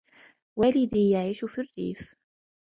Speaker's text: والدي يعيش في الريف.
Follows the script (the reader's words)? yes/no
yes